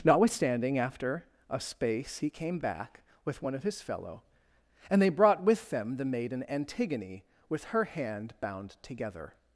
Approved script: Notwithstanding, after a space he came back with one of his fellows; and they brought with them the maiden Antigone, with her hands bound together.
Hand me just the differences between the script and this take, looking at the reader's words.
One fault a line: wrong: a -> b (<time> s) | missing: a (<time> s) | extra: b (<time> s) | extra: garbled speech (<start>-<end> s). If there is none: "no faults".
wrong: fellows -> fellow (3.8 s)
wrong: hands -> hand (7.8 s)